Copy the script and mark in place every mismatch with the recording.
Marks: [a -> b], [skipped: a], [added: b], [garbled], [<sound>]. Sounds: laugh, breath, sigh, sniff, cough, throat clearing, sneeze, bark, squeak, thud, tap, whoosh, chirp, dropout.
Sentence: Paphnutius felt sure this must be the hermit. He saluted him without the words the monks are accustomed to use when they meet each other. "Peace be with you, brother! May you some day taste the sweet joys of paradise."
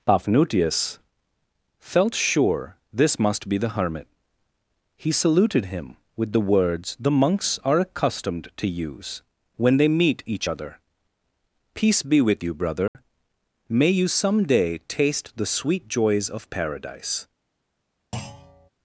Paphnutius felt sure this must be the hermit. He saluted him [without -> with] the words the monks are accustomed to use when they meet each other. "Peace be with you, brother! [dropout] May you some day taste the sweet joys of paradise." [thud]